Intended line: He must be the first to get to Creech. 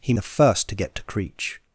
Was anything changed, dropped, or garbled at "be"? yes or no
yes